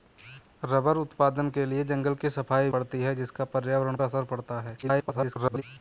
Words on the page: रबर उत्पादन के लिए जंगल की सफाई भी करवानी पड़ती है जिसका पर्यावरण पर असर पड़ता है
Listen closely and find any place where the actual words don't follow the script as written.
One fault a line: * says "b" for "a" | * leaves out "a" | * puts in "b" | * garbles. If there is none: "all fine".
* leaves out "भी करवानी"
* leaves out "पर"
* garbles